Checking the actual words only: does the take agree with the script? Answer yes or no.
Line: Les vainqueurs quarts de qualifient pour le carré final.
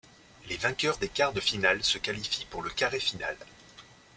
no